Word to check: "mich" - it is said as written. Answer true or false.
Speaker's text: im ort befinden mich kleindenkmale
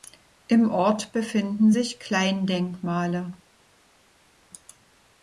false